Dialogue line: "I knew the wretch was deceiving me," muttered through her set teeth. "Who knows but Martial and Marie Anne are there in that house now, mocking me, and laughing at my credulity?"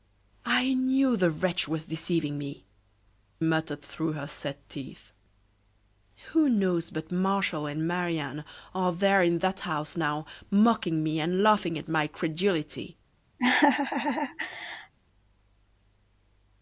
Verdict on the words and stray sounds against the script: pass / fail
fail